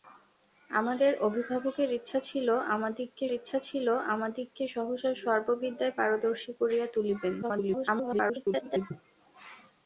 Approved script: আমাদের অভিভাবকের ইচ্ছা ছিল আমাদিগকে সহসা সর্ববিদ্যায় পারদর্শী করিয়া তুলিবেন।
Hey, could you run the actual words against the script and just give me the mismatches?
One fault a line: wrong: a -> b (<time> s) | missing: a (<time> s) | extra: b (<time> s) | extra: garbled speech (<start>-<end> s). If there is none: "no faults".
extra: ইচ্ছা ছিল আমাদিগকে (3.3 s)
extra: garbled speech (7.4-8.9 s)